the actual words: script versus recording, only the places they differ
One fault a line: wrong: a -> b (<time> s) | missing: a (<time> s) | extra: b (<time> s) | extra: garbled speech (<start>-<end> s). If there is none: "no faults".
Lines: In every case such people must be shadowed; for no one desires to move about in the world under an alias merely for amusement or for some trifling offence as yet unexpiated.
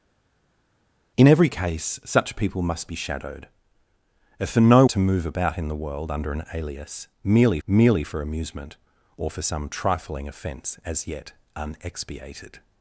missing: one desires (4.8 s)
extra: merely (7.7 s)